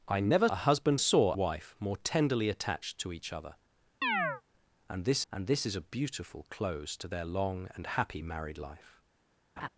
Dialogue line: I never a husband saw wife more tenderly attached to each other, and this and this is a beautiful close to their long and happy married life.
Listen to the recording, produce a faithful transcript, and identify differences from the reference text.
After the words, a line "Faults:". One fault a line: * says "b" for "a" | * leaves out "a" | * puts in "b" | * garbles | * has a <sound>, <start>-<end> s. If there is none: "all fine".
I never a husband saw wife more tenderly attached to each other, and this and this is a beautiful close to their long and happy married life.
Faults:
* has a chirp, 4.0-4.4 s
* has a laugh, 9.6-9.7 s